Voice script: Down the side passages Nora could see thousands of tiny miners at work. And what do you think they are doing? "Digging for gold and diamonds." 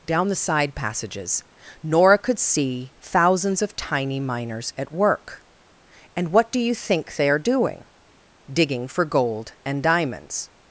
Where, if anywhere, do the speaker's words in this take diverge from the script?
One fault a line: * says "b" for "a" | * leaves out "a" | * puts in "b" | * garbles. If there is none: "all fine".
all fine